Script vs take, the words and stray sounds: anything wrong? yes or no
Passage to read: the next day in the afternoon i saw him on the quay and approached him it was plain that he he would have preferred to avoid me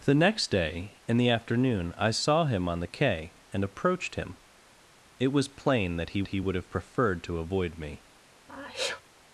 yes